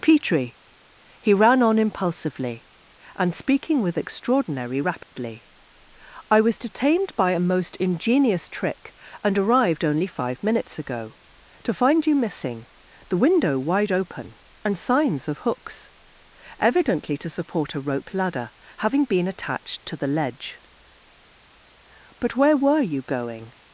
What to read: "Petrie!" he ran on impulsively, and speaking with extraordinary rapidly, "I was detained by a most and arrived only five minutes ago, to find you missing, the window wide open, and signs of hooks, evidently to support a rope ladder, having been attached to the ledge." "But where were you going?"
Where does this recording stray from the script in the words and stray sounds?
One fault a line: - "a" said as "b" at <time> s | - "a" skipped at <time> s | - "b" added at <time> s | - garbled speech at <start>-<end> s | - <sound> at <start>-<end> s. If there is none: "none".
- dropout at 5.0-5.1 s
- "ingenious trick" added at 7.8 s